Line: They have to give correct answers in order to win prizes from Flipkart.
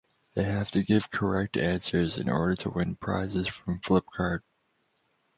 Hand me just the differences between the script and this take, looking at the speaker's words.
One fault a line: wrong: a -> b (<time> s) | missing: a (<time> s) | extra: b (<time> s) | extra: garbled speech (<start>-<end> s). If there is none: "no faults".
no faults